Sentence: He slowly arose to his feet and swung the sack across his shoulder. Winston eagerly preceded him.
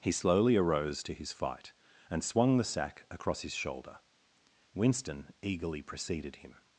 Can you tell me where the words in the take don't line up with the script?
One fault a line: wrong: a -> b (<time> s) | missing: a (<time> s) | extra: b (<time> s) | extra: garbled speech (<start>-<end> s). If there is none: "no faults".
wrong: feet -> fight (1.3 s)